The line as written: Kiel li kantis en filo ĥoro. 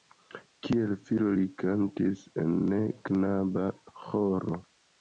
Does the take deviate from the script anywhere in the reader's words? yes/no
yes